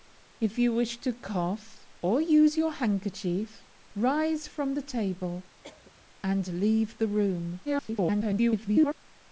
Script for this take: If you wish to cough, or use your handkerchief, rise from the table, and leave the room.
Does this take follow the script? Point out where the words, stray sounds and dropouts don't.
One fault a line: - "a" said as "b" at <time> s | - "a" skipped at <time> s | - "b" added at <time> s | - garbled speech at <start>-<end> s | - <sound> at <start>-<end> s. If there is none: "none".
- cough at 5.6-5.9 s
- garbled speech at 7.7-9.0 s